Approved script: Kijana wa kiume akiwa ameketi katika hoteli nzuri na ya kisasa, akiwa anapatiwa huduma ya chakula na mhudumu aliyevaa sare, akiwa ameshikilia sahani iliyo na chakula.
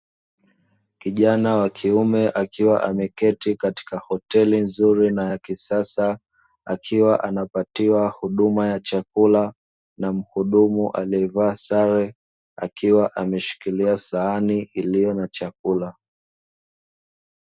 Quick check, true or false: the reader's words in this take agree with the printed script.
true